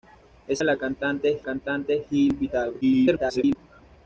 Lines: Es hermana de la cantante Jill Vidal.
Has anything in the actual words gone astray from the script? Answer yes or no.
yes